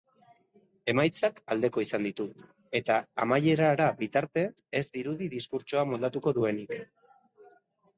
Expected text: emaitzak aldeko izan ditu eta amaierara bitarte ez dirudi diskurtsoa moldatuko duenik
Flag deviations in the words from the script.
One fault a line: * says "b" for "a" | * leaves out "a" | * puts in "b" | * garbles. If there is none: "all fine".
all fine